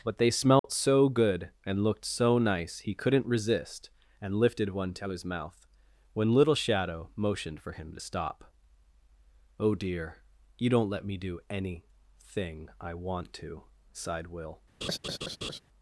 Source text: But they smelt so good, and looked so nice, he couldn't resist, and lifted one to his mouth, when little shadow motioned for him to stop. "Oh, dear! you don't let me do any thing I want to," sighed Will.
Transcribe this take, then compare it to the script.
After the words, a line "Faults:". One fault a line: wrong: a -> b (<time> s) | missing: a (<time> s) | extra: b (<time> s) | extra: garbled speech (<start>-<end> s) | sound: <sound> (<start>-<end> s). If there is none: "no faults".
But they smelt so good, and looked so nice, he couldn't resist, and lifted one to his mouth, when little shadow motioned for him to stop. "Oh, dear! you don't let me do any thing I want to," sighed Will.
Faults:
sound: dropout (0.6-0.6 s)
sound: laugh (14.8-15.6 s)